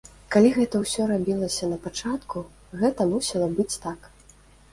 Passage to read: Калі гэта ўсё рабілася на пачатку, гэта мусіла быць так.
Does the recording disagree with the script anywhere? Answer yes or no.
no